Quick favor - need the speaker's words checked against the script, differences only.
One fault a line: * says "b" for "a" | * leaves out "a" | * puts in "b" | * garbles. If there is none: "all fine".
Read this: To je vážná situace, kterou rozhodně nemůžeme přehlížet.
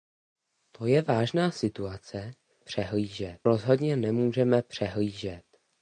* says "přehlížet" for "kterou"